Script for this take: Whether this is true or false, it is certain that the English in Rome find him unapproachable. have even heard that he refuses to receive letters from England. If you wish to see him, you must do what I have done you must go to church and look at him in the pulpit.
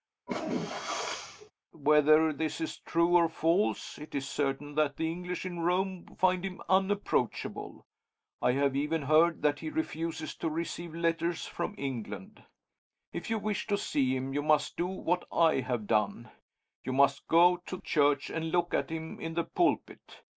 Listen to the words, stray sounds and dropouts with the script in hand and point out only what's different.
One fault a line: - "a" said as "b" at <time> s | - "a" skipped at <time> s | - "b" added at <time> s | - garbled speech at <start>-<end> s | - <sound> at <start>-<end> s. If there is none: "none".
- sneeze at 0.3-1.5 s
- "I" added at 8.4 s